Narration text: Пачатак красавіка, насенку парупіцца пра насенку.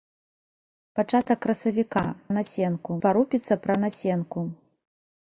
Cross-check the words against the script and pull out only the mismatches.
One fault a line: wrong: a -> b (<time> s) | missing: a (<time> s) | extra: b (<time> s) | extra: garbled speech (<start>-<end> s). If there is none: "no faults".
no faults